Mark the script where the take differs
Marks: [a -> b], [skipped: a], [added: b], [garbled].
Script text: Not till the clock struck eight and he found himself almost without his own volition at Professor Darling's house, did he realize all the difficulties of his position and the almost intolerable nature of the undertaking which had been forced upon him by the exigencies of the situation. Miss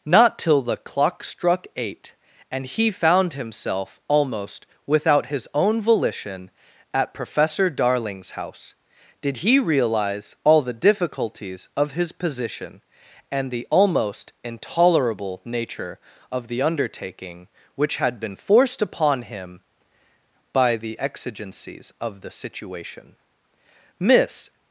Not till the clock struck eight and he found himself almost without his own volition at Professor Darling's house, did he realize all the difficulties of his position and the almost intolerable nature of the undertaking which had been forced upon him by the exigencies of the situation. Miss